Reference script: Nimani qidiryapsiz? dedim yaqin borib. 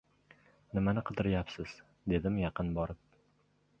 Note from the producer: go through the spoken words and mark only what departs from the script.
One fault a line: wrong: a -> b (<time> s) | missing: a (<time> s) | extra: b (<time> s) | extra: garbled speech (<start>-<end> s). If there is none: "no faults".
no faults